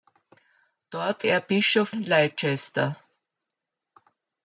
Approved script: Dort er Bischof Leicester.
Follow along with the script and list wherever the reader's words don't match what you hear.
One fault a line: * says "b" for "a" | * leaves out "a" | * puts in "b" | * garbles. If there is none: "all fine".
all fine